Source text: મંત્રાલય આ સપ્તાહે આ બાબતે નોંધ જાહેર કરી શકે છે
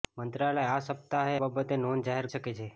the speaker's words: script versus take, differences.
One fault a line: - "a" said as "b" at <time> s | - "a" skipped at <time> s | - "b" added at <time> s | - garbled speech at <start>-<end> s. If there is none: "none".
- "આ" skipped at 1.4 s
- "કરી" skipped at 2.3 s